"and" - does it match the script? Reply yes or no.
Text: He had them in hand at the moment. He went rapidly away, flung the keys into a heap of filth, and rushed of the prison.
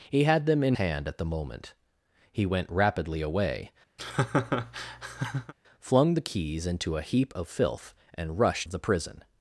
yes